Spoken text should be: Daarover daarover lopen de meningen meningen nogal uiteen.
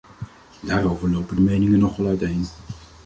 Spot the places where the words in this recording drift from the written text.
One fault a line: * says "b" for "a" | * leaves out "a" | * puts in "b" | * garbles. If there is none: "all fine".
* leaves out "daarover"
* leaves out "meningen"